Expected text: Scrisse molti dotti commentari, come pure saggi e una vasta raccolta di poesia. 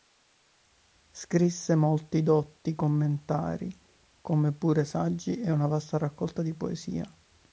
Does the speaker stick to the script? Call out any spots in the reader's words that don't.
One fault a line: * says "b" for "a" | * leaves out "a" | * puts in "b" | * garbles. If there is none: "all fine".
all fine